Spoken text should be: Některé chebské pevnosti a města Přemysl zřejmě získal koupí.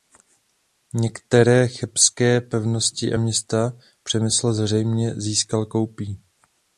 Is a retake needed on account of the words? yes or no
no